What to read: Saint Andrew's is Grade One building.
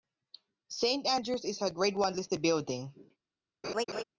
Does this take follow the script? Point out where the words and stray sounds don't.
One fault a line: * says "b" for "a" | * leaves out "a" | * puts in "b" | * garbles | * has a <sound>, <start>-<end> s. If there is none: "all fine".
* puts in "a"
* puts in "listed"
* has a laugh, 3.6-4.0 s